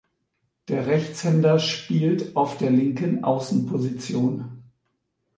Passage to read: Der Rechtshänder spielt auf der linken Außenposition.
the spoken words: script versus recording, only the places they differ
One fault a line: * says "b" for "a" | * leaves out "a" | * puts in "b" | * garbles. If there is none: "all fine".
all fine